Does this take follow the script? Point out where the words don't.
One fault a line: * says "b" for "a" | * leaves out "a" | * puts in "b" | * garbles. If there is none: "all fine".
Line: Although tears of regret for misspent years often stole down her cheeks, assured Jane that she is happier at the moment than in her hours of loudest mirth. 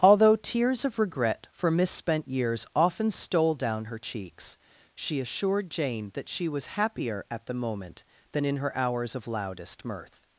* puts in "she"
* says "was" for "is"